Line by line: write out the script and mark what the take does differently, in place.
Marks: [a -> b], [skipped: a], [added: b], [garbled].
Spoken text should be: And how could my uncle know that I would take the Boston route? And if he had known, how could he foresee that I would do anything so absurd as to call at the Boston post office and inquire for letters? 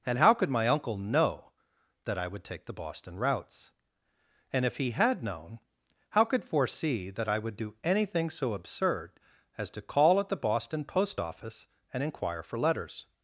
And how could my uncle know that I would take the Boston [route? -> routes] And if he had known, how could [skipped: he] foresee that I would do anything so absurd as to call at the Boston post office and inquire for letters?